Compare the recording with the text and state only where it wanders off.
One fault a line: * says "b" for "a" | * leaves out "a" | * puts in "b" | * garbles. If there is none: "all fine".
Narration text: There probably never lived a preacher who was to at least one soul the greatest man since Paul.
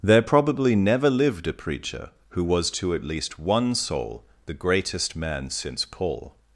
all fine